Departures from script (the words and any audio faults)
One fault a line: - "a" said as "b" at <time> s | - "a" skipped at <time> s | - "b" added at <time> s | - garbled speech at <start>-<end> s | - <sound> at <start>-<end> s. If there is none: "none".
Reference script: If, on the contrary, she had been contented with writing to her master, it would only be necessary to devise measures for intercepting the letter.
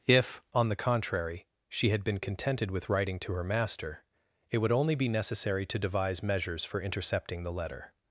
none